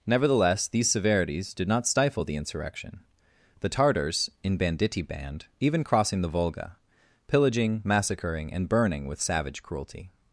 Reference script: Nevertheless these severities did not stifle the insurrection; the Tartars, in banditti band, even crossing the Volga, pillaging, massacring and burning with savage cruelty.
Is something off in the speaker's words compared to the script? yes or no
no